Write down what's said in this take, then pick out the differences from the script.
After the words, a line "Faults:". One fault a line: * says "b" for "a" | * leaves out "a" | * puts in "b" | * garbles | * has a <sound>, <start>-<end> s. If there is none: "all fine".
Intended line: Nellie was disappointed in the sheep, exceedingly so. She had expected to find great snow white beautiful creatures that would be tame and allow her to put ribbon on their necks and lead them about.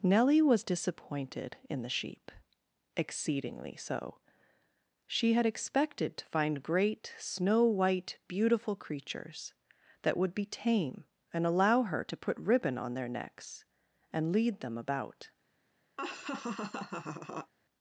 Nellie was disappointed in the sheep, exceedingly so. She had expected to find great snow white beautiful creatures that would be tame and allow her to put ribbon on their necks and lead them about.
Faults:
* has a laugh, 16.0-17.5 s